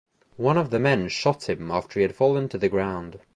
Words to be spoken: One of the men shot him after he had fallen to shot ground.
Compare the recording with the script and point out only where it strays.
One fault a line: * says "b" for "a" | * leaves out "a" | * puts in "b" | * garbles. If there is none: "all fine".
* says "the" for "shot"